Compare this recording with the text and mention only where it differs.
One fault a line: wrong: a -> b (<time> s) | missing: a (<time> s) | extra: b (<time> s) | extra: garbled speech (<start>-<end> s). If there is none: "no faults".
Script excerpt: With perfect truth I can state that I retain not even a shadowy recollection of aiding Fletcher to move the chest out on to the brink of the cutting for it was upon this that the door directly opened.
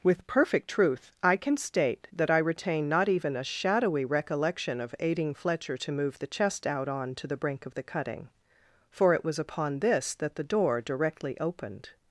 no faults